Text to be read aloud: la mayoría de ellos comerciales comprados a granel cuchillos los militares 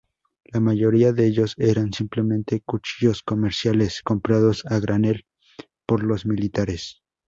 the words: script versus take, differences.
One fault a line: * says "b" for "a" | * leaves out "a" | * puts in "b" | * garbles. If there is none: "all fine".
* puts in "eran simplemente cuchillos"
* says "por" for "cuchillos"